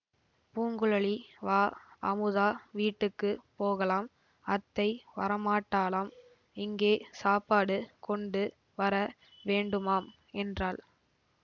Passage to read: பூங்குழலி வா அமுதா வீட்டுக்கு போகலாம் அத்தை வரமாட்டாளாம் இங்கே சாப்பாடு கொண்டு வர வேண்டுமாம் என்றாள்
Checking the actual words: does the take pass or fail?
pass